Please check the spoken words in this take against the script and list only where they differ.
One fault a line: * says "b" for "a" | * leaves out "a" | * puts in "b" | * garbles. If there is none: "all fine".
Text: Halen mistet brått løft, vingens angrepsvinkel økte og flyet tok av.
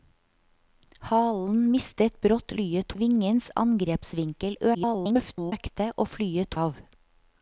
* says "flyet" for "løft"
* garbles
* leaves out "tok"